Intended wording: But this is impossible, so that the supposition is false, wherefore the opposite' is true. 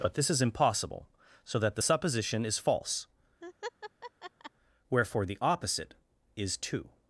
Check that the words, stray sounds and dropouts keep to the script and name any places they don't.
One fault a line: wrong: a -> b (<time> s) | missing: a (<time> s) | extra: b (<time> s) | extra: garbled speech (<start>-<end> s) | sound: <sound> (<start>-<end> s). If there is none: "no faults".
sound: laugh (3.4-4.5 s)
wrong: true -> two (6.6 s)